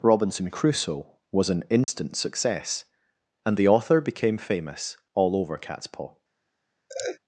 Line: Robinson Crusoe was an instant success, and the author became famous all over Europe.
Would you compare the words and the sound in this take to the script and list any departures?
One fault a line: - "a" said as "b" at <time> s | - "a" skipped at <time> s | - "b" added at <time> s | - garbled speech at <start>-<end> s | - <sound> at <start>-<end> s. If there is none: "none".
- dropout at 1.8-1.9 s
- "Europe" said as "Catspaw" at 5.6 s
- laugh at 6.9-7.2 s